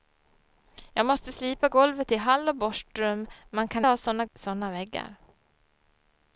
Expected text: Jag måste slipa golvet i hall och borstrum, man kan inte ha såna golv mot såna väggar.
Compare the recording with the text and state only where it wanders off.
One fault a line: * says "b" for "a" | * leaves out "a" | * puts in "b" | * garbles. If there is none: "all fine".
* leaves out "inte"
* leaves out "golv mot"